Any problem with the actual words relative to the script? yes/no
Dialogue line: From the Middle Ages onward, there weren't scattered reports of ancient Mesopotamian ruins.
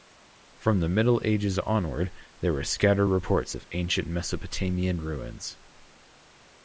yes